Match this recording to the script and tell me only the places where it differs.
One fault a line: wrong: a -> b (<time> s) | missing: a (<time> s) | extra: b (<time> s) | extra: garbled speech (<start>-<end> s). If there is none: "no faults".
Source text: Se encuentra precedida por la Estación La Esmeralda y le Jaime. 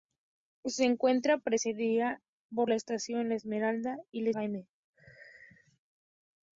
no faults